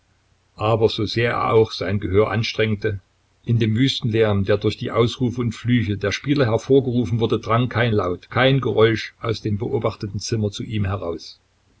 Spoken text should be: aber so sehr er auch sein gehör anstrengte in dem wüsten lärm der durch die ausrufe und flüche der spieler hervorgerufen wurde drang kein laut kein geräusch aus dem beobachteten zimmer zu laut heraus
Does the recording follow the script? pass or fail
fail